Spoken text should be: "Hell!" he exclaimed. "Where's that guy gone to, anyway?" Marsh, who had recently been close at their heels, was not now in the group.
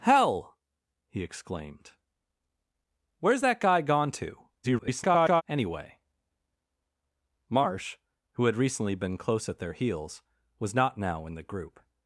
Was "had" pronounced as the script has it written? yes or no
yes